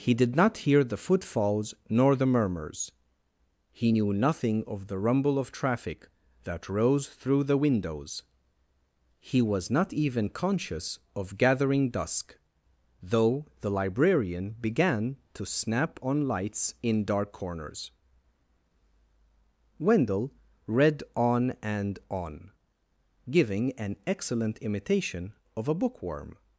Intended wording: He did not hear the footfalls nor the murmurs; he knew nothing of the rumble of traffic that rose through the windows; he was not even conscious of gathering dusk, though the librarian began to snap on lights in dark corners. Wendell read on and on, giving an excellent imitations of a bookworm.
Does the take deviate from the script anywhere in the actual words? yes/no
yes